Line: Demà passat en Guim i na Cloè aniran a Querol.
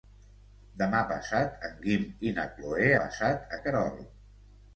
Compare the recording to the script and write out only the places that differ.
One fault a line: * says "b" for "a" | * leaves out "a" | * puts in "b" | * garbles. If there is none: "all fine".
* says "passat" for "aniran"